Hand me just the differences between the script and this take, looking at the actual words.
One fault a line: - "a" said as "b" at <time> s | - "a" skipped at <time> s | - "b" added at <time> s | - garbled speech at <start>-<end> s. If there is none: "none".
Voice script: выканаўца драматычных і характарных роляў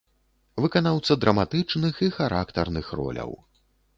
none